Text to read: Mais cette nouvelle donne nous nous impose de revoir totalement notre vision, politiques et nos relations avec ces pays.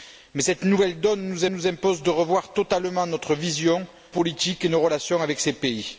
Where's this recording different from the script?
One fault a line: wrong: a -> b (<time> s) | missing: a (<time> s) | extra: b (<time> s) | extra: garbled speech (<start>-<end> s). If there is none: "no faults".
no faults